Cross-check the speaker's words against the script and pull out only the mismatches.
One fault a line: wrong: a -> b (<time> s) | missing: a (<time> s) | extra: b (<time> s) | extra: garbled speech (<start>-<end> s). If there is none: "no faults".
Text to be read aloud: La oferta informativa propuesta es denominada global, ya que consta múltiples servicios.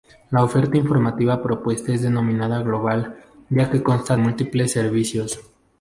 no faults